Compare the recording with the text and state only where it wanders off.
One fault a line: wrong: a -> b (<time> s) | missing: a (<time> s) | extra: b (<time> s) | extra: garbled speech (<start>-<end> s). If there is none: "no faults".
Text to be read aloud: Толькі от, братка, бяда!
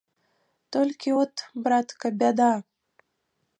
no faults